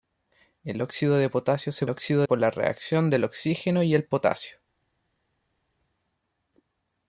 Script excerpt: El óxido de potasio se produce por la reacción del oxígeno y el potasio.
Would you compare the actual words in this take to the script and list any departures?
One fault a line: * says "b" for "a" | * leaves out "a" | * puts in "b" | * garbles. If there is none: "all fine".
* says "óxido" for "produce"